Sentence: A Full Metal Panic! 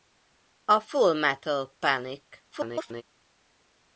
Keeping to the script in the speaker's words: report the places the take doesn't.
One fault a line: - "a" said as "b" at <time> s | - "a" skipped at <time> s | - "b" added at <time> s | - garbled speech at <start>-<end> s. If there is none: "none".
- garbled speech at 2.5-3.0 s